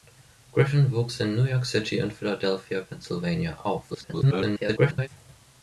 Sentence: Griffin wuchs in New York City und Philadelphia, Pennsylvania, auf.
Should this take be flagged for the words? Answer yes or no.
yes